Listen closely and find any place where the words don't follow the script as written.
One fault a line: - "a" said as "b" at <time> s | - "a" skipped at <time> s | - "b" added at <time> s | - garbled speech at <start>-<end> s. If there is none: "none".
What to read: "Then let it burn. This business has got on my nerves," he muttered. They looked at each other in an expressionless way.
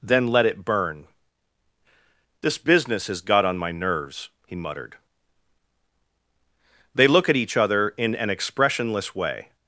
- "looked" said as "look" at 7.1 s